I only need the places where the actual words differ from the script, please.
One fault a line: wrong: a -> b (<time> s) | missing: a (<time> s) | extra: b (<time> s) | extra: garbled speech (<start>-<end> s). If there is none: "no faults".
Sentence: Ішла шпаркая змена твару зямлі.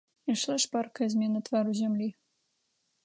no faults